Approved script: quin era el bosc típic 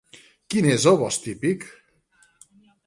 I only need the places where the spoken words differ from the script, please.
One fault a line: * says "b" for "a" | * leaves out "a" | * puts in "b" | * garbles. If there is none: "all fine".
* says "és" for "era"